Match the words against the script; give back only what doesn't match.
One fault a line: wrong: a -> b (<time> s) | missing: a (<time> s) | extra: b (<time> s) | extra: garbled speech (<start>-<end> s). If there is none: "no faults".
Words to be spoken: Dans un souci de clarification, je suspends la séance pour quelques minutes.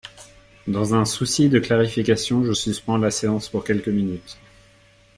no faults